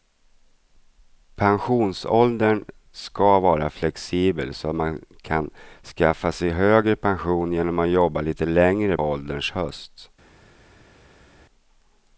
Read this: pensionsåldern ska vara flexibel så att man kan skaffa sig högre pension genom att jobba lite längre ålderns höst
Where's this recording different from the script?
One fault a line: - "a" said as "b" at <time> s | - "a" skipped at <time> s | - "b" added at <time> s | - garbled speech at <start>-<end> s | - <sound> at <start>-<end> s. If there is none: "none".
none